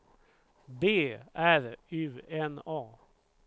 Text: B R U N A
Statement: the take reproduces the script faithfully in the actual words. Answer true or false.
true